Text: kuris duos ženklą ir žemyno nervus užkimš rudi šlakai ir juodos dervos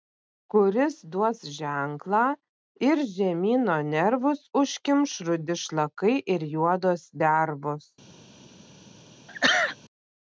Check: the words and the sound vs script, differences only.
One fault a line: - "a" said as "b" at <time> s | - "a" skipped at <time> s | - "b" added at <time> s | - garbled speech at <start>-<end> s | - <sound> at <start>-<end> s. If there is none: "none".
- sneeze at 9.3-9.8 s